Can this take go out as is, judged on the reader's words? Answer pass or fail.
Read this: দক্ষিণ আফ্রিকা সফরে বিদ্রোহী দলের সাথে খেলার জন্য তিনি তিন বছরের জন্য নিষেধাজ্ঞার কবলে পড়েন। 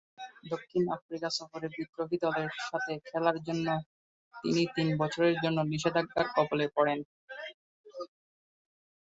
pass